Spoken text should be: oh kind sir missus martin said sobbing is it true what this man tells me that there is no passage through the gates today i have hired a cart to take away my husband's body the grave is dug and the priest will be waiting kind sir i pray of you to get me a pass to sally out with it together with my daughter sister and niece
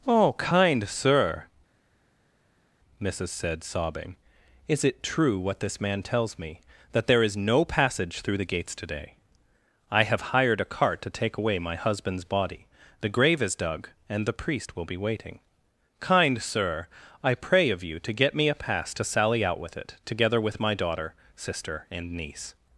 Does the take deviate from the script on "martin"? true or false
true